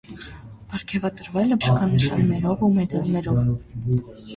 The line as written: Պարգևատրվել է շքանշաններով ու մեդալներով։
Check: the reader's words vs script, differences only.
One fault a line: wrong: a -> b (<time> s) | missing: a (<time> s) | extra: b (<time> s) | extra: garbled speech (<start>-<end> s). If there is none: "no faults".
no faults